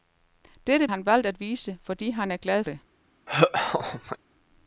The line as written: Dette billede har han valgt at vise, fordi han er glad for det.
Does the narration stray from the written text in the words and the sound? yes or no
yes